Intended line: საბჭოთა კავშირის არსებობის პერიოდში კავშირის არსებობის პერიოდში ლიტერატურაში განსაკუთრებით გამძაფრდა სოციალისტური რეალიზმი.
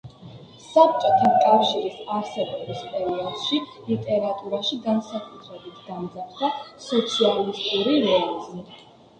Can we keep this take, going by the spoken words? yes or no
no